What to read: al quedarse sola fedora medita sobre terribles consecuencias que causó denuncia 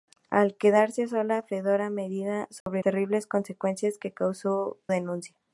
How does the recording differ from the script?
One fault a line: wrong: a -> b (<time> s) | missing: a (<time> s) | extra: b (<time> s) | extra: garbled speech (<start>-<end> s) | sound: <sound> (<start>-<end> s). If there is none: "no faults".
sound: dropout (2.6-2.7 s)